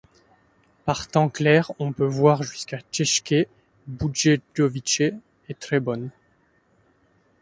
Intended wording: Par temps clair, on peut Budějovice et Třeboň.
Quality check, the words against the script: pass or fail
fail